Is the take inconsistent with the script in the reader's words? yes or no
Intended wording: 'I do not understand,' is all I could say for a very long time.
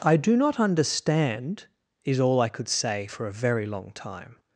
no